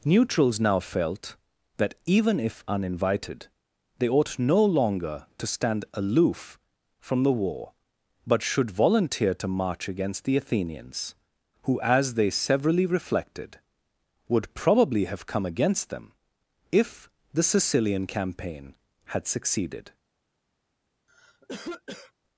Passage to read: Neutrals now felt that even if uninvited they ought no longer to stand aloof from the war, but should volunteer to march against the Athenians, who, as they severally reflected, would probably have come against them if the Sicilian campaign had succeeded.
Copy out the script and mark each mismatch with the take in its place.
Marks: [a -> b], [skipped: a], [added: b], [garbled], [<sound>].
Neutrals now felt that even if uninvited they ought no longer to stand aloof from the war, but should volunteer to march against the Athenians, who, as they severally reflected, would probably have come against them if the Sicilian campaign had succeeded. [cough]